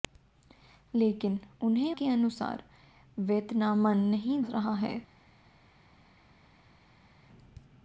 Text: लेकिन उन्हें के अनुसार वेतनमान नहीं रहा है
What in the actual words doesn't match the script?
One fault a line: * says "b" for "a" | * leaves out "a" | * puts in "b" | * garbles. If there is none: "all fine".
all fine